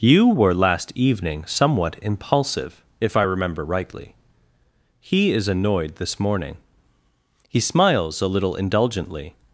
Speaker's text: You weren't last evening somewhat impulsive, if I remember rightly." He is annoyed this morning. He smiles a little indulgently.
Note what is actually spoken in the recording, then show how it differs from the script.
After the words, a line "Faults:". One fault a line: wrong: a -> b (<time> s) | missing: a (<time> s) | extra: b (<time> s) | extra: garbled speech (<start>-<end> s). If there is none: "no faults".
You were last evening somewhat impulsive, if I remember rightly." He is annoyed this morning. He smiles a little indulgently.
Faults:
wrong: weren't -> were (0.3 s)